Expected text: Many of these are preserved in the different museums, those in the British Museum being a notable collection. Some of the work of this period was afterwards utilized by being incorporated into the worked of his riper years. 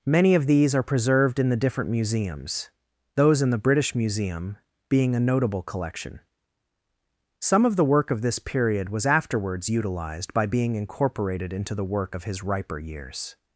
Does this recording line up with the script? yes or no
no